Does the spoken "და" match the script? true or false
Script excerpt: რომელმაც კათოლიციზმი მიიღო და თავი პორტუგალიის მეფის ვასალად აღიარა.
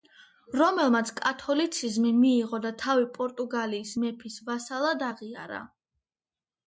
true